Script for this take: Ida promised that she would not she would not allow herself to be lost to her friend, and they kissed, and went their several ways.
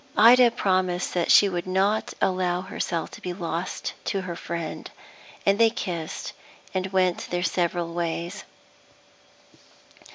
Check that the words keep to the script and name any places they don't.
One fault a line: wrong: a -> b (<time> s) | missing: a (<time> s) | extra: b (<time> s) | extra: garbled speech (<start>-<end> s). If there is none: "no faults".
missing: she would not (2.1 s)